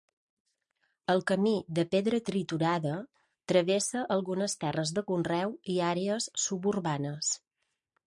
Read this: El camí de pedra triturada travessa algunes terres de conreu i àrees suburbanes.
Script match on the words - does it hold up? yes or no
yes